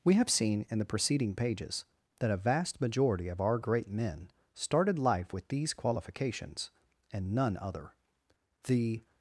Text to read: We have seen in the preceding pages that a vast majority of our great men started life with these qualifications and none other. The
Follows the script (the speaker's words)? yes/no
yes